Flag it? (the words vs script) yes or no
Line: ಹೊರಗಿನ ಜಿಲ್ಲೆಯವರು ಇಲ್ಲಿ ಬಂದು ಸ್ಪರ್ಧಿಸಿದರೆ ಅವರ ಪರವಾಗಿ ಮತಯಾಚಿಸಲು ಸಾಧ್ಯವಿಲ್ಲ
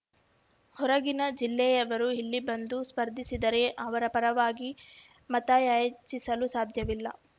no